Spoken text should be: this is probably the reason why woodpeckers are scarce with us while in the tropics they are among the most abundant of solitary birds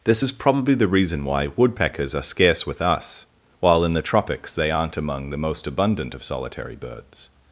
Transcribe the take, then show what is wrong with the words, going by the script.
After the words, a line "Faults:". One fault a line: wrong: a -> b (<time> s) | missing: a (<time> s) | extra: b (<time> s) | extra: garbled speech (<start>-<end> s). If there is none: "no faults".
this is probably the reason why woodpeckers are scarce with us while in the tropics they aren't among the most abundant of solitary birds
Faults:
wrong: are -> aren't (4.7 s)